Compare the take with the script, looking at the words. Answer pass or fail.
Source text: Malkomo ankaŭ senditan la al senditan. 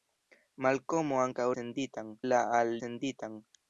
pass